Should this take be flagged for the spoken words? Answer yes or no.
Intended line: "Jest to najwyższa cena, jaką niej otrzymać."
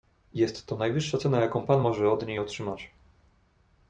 yes